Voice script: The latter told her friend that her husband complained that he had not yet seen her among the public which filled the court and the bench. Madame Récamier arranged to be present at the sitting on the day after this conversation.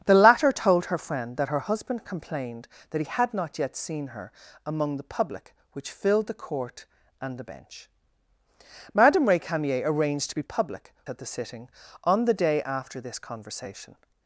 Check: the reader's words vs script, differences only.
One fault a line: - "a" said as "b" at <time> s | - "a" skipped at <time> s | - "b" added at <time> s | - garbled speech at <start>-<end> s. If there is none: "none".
- "present" said as "public" at 10.4 s